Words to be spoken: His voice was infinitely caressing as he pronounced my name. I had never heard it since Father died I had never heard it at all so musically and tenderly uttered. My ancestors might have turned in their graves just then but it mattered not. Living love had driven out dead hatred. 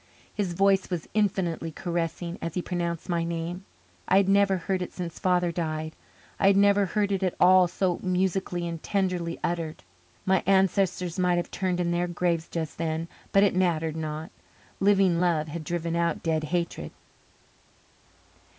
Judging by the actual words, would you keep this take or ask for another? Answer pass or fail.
pass